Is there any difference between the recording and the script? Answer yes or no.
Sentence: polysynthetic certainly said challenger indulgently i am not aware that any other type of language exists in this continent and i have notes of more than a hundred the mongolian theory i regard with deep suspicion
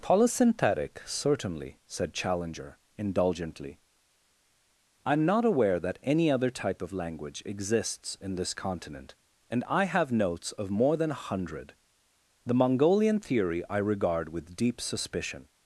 no